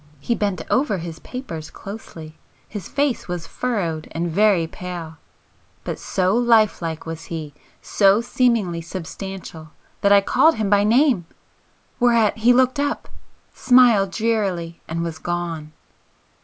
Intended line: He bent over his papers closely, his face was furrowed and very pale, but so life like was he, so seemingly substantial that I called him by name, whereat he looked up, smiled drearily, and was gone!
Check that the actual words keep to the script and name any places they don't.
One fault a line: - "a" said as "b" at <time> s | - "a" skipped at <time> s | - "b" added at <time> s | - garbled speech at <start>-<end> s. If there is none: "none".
none